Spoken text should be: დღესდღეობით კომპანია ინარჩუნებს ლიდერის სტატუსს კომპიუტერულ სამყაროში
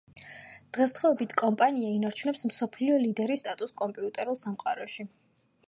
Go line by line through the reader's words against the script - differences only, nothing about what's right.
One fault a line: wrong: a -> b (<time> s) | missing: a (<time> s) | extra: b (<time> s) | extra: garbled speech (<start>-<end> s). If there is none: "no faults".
extra: მსოფლიო (2.5 s)